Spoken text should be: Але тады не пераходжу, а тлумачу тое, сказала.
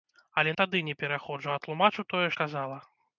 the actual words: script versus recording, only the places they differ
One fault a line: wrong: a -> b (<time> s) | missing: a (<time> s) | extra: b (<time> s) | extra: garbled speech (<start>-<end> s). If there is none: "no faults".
no faults